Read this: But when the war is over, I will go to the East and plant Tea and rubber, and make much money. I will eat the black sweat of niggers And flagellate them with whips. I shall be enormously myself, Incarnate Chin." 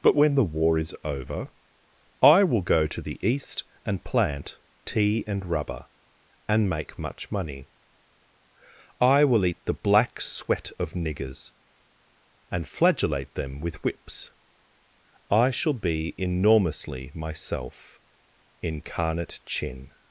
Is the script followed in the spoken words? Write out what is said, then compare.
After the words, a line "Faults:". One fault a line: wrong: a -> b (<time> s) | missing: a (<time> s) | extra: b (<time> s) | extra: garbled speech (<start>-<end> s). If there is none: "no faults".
But when the war is over, I will go to the East and plant Tea and rubber, and make much money. I will eat the black sweat of niggers And flagellate them with whips. I shall be enormously myself, Incarnate Chin."
Faults:
no faults